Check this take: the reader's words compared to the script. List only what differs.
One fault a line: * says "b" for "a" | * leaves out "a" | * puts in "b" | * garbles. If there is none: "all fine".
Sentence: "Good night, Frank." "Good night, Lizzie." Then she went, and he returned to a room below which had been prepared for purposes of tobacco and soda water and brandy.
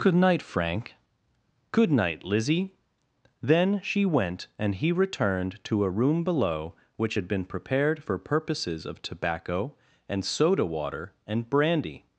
all fine